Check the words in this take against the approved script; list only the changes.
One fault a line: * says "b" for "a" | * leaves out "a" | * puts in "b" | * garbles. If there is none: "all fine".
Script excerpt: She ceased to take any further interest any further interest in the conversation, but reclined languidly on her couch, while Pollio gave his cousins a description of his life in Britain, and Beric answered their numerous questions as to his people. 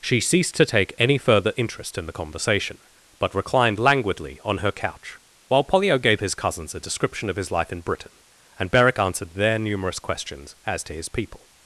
* leaves out "any further interest"